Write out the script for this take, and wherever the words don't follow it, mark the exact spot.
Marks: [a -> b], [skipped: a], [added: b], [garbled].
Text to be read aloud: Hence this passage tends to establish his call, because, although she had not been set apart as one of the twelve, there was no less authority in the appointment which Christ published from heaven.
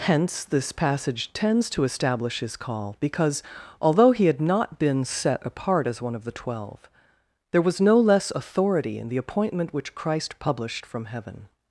Hence this passage tends to establish his call, because, although [she -> he] had not been set apart as one of the twelve, there was no less authority in the appointment which Christ published from heaven.